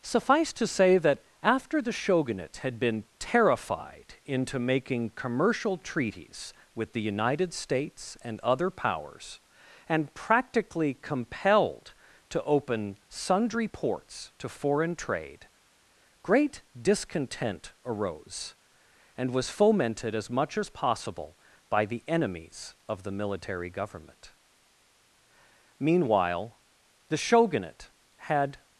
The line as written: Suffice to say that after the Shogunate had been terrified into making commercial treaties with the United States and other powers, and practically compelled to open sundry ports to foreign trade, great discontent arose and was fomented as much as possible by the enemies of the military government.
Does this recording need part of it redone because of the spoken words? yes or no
yes